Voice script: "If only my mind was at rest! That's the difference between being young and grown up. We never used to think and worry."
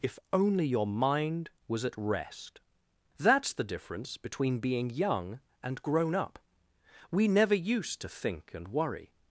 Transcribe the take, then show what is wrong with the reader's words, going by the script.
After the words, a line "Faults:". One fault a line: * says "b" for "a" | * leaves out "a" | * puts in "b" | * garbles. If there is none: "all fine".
"If only your mind was at rest! That's the difference between being young and grown up. We never used to think and worry."
Faults:
* says "your" for "my"